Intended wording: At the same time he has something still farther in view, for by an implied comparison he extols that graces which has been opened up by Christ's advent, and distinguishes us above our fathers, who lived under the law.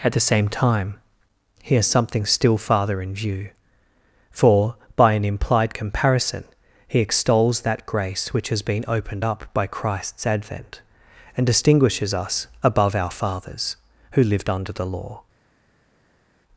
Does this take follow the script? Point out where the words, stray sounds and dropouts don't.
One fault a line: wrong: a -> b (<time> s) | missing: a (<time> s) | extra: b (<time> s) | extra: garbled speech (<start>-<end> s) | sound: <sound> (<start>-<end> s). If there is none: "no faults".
wrong: graces -> grace (7.8 s)